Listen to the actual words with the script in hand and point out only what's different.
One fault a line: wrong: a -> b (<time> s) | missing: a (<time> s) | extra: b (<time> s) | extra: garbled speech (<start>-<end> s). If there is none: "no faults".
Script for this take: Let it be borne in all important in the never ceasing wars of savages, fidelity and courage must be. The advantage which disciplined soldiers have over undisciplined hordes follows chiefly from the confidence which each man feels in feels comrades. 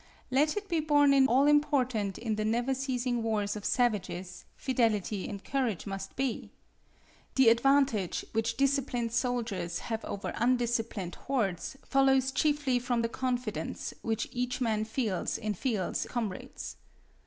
no faults